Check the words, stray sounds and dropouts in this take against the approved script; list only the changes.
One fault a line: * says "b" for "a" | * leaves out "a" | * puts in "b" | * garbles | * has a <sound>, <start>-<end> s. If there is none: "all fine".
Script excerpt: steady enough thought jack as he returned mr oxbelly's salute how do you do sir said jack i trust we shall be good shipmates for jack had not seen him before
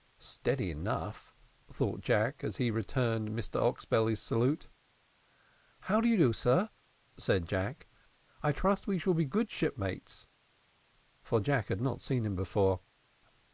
all fine